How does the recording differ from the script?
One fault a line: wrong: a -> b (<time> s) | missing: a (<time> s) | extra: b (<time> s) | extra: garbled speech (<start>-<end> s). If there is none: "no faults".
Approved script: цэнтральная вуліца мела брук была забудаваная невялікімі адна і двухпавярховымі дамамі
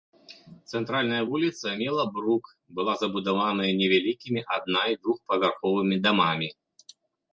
no faults